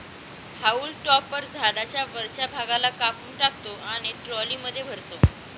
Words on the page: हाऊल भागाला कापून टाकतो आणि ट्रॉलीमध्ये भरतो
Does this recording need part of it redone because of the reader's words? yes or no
yes